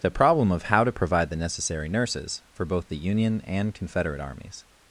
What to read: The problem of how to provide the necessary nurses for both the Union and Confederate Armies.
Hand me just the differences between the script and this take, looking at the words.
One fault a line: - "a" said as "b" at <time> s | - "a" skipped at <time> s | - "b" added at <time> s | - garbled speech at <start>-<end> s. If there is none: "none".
none